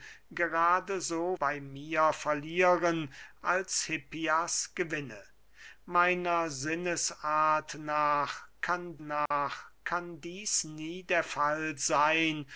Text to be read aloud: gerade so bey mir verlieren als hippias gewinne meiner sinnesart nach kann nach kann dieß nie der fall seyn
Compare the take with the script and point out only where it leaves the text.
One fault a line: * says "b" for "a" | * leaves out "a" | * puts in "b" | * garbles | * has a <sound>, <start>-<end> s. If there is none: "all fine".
* has a dropout, 9.3-9.3 s